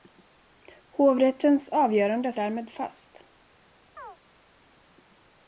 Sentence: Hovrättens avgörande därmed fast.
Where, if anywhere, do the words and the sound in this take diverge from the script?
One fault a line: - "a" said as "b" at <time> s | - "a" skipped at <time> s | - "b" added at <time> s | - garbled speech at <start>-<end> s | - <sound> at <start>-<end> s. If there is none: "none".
- chirp at 4.0-4.2 s